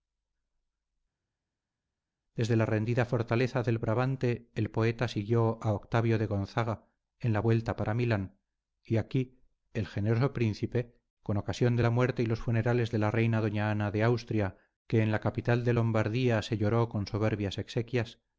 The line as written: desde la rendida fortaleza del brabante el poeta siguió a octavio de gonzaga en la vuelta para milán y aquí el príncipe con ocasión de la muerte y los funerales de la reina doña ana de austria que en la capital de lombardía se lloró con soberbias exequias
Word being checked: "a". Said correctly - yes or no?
yes